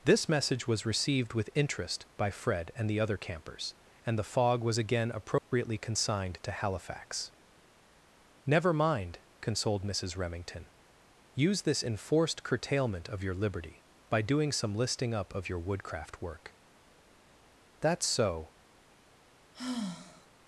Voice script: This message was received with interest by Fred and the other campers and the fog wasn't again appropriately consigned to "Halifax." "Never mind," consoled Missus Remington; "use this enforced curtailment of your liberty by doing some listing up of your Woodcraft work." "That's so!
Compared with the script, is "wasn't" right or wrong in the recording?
wrong